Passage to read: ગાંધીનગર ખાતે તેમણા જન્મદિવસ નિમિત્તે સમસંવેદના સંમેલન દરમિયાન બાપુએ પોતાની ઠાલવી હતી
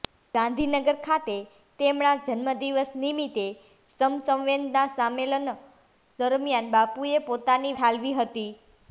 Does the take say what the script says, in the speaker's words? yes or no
yes